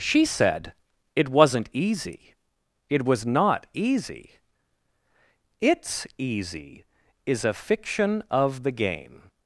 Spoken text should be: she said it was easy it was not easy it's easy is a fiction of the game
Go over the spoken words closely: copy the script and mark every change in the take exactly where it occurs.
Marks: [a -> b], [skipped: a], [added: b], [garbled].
she said it [was -> wasn't] easy it was not easy it's easy is a fiction of the game